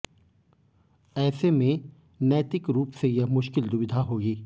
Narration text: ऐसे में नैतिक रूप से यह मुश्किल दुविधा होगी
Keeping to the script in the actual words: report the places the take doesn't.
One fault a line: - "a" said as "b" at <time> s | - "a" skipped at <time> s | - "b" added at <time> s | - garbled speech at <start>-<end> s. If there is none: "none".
none